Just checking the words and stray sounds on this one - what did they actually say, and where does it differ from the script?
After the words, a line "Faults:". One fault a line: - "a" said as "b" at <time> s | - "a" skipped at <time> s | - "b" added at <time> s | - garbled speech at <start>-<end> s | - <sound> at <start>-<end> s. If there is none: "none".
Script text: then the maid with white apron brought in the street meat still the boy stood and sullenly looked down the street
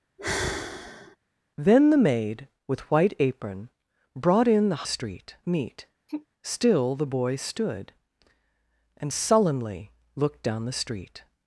then the maid with white apron brought in the street meat still the boy stood and sullenly looked down the street
Faults:
- sigh at 0.2-1.2 s
- sigh at 6.1-6.3 s